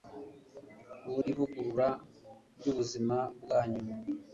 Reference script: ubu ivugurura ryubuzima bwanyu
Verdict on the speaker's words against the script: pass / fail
pass